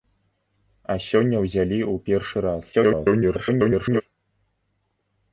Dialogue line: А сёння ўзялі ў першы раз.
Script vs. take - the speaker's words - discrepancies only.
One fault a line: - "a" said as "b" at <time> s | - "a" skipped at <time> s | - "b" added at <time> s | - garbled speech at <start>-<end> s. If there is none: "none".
- garbled speech at 2.7-4.0 s